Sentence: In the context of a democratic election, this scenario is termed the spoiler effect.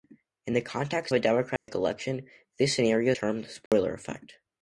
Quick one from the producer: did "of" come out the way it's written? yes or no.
no